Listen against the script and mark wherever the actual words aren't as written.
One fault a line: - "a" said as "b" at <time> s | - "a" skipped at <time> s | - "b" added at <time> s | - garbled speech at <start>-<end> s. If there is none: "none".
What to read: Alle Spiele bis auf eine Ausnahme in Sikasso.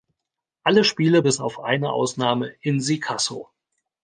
none